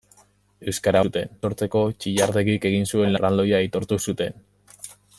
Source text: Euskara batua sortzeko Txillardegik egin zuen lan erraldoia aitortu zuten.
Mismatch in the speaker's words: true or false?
true